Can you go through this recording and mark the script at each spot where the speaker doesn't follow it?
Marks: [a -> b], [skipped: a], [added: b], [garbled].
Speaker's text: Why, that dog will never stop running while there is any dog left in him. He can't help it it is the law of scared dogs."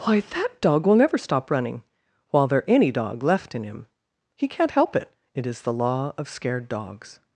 Why, that dog will never stop running while there [skipped: is] any dog left in him. He can't help it it is the law of scared dogs."